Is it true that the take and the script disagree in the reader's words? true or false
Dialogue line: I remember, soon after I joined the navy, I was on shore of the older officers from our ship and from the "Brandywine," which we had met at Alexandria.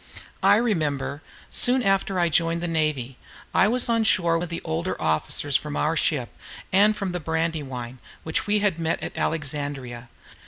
false